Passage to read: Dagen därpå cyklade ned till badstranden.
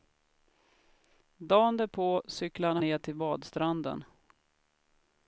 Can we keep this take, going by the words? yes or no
yes